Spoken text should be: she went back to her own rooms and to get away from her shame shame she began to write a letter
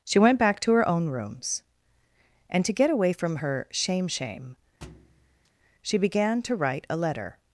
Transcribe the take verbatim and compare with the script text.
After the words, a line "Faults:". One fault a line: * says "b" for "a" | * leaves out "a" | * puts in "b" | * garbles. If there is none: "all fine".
she went back to her own rooms and to get away from her shame shame she began to write a letter
Faults:
all fine